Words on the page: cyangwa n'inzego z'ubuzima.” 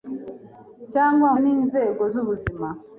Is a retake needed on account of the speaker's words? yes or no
no